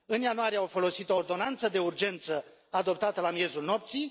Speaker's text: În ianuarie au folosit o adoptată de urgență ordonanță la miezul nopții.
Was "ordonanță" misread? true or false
true